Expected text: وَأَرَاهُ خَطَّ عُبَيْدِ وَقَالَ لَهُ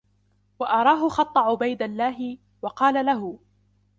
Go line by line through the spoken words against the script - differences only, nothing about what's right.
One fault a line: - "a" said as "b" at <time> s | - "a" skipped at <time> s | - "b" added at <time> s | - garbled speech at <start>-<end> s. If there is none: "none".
- "اللَّهِ" added at 1.8 s